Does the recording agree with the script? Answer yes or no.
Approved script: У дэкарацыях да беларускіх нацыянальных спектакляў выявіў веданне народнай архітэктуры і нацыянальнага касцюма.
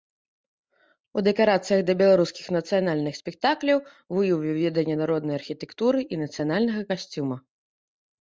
yes